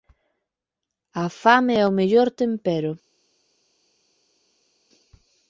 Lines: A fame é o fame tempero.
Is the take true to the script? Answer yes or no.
no